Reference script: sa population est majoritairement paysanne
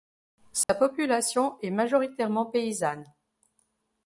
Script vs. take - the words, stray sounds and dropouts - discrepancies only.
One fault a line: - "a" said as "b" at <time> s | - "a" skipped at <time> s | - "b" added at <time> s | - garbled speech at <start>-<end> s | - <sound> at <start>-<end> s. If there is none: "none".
- dropout at 0.6-0.7 s